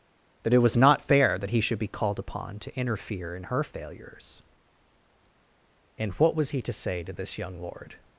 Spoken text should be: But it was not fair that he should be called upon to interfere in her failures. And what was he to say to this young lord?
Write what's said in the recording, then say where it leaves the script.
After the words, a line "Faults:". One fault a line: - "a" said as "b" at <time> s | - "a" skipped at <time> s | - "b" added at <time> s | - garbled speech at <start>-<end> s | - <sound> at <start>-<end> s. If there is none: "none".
That it was not fair that he should be called upon to interfere in her failures. And what was he to say to this young lord?
Faults:
- "But" said as "That" at 0.4 s